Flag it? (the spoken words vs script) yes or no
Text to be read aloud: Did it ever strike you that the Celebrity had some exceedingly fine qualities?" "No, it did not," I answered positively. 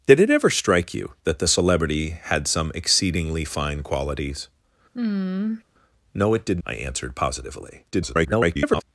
yes